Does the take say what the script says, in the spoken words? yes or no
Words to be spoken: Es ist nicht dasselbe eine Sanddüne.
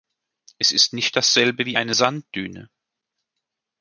no